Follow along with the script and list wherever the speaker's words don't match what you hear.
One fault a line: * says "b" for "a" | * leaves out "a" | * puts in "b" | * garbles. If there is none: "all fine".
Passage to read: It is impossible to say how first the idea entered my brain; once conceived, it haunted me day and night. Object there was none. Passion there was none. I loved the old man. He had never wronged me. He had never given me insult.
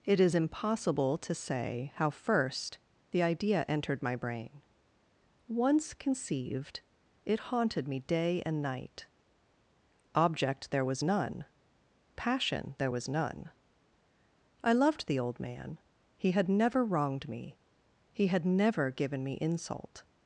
all fine